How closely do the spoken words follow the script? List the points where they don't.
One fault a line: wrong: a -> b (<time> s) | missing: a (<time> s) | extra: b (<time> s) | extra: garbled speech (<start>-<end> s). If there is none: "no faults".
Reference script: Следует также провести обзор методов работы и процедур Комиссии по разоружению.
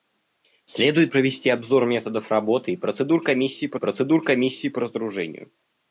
missing: также (1.1 s)
extra: процедур Комиссии по (3.8 s)